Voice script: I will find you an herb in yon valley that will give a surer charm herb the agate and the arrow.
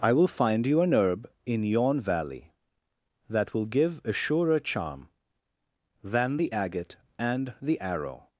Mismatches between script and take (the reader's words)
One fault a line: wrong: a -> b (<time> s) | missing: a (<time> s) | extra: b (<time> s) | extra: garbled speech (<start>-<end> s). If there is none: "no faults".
wrong: herb -> than (6.0 s)